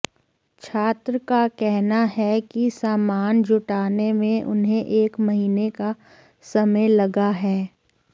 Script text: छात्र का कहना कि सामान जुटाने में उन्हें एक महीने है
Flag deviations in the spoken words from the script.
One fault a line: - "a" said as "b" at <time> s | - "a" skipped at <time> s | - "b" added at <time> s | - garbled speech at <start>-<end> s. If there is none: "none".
- "है" added at 2.1 s
- "का समय लगा" added at 5.7 s